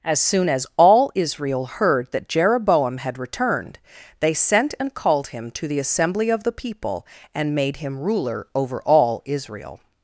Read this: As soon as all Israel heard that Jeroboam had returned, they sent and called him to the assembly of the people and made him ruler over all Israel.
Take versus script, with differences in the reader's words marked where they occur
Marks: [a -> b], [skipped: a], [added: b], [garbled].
As soon as all Israel heard that Jeroboam had returned, they sent and called him to the assembly of the people and made him ruler over all Israel.